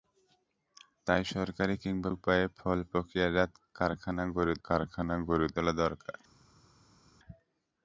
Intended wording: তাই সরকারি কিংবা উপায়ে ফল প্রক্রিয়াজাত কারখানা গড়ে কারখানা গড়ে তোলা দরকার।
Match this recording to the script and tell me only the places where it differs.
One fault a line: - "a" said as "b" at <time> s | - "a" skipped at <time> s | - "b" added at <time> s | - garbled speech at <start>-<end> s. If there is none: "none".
none